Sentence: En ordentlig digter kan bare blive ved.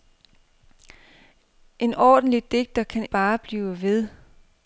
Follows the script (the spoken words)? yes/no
yes